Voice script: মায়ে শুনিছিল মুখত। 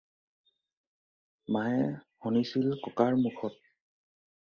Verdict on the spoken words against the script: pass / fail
fail